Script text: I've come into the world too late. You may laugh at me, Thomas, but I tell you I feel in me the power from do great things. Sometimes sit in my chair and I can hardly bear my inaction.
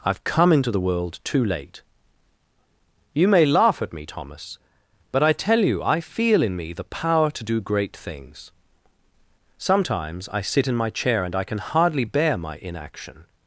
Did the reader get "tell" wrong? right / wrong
right